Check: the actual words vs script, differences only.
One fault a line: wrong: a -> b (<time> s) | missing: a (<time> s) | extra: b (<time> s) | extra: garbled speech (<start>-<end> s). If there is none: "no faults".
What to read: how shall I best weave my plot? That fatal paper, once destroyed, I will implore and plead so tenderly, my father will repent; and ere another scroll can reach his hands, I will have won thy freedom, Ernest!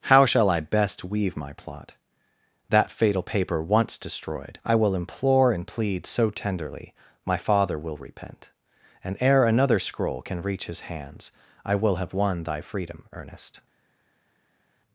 no faults